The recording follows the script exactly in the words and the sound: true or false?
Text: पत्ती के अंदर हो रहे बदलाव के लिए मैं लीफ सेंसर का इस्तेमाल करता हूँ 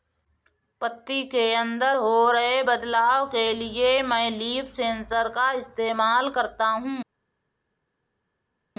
true